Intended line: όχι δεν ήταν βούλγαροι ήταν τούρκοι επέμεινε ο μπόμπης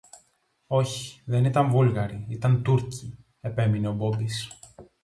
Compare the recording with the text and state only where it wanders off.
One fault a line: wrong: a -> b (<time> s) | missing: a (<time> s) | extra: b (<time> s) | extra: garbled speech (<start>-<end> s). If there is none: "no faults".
no faults